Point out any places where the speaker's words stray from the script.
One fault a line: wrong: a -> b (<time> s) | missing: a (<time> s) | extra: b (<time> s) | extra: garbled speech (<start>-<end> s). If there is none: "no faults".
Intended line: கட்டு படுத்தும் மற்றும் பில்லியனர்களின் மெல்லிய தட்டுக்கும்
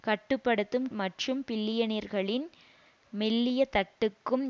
no faults